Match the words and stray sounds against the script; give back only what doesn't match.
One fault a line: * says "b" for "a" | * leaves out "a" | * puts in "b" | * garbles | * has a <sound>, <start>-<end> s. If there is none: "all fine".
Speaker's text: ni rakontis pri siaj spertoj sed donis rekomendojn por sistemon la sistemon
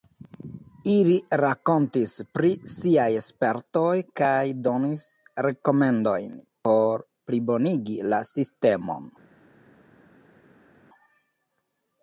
* says "ili" for "ni"
* says "kaj" for "sed"
* says "plibonigi" for "sistemon"